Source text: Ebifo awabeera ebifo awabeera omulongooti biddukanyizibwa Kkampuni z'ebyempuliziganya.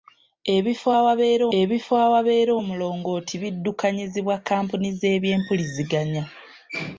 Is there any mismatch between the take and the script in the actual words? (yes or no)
no